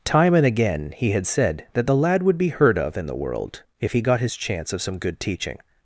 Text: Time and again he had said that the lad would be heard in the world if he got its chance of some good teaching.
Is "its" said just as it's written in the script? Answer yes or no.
no